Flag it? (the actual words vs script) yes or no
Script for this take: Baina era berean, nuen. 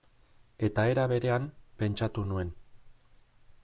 yes